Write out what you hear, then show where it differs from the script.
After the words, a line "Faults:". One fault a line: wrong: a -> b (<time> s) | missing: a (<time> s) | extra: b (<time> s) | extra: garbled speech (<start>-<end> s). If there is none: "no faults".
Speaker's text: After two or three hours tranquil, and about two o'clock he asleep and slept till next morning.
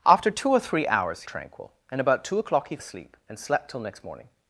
After two or three hours tranquil, and about two o'clock he asleep and slept till next morning.
Faults:
no faults